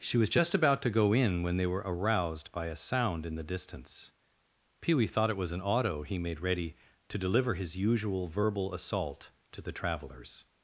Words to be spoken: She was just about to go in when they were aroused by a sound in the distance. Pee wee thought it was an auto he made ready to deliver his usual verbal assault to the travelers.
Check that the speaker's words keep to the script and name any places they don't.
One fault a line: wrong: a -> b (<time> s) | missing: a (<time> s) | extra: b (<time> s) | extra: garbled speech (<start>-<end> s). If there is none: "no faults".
no faults